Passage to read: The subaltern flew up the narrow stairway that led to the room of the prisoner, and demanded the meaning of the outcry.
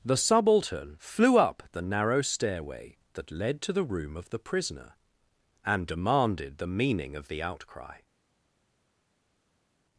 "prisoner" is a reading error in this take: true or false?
false